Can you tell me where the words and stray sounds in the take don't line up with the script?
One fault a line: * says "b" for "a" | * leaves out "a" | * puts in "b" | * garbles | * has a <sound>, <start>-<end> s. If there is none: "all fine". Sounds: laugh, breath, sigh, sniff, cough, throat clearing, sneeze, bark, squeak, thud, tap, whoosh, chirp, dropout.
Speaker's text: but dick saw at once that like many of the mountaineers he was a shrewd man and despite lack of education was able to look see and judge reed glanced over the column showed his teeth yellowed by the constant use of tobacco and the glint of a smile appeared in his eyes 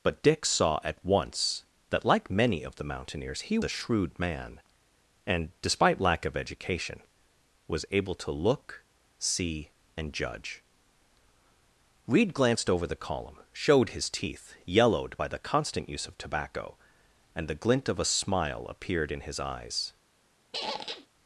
* leaves out "was"
* has a squeak, 20.5-21.1 s